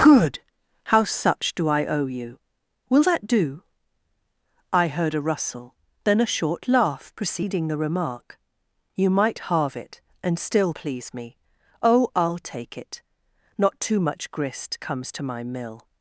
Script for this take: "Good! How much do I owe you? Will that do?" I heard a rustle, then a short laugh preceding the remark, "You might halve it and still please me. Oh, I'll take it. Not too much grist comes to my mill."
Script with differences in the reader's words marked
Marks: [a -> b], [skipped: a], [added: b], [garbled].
"Good! How [much -> such] do I owe you? Will that do?" I heard a rustle, then a short laugh preceding the remark, "You might halve it and still please me. Oh, I'll take it. Not too much grist comes to my mill."